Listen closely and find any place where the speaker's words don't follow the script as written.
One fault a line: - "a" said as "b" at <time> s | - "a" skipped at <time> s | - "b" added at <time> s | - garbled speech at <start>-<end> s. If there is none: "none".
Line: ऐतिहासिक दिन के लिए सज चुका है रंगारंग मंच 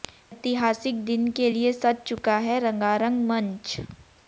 none